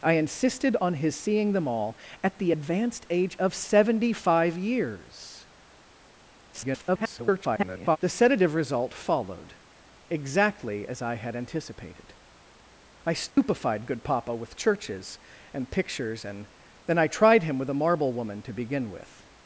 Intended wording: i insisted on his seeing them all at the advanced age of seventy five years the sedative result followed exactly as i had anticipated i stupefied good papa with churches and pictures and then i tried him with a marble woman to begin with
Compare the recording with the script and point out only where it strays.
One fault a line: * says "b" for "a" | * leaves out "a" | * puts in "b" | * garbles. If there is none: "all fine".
* garbles